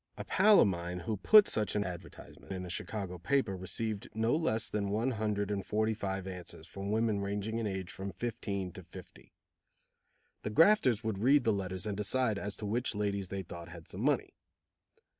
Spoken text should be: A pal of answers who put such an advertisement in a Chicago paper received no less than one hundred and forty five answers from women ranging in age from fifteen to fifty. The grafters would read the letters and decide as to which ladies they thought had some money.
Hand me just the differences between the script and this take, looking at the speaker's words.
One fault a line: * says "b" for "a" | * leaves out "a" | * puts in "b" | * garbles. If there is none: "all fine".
* says "mine" for "answers"